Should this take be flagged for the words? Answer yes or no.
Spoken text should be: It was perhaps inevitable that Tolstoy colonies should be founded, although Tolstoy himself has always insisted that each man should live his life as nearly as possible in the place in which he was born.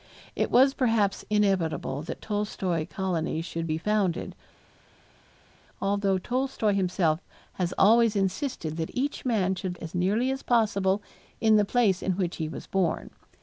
yes